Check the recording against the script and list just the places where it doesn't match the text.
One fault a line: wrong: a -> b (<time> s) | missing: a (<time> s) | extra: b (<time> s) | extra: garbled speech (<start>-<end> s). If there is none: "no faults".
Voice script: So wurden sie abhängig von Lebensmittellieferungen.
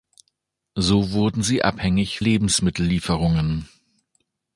missing: von (2.2 s)